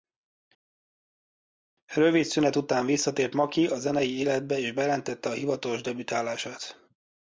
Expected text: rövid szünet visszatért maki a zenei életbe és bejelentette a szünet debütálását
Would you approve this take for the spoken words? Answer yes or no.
no